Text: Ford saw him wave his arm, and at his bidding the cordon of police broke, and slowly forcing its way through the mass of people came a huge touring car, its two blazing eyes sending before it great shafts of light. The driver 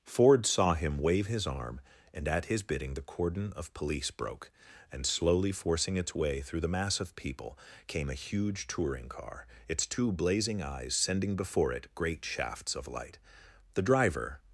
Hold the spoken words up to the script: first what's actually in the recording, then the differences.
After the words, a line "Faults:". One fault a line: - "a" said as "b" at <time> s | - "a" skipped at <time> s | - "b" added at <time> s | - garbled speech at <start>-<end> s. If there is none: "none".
Ford saw him wave his arm, and at his bidding the cordon of police broke, and slowly forcing its way through the mass of people came a huge touring car, its two blazing eyes sending before it great shafts of light. The driver
Faults:
none